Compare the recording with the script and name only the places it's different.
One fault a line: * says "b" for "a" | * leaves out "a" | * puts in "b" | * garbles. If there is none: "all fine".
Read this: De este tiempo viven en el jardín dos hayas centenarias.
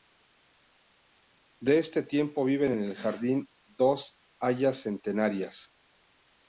all fine